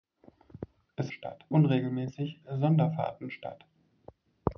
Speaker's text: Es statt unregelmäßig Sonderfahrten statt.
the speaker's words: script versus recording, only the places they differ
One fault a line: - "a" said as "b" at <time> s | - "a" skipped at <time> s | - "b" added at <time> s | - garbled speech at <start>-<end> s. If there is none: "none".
none